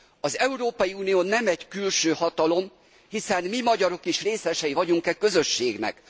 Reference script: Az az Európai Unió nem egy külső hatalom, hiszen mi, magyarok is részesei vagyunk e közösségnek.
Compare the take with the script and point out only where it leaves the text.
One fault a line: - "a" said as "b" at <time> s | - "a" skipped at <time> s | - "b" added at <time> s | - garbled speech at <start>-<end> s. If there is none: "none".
- "az" skipped at 0.4 s